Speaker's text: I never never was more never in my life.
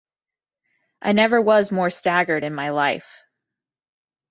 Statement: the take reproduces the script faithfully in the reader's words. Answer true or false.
false